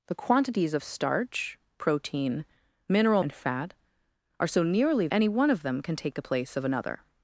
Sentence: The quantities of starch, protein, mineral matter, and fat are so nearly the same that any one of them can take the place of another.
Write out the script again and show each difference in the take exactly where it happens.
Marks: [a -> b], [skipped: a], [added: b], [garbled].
The quantities of starch, protein, mineral [skipped: matter,] and fat are so nearly [skipped: the same that] any one of them can take the place of another.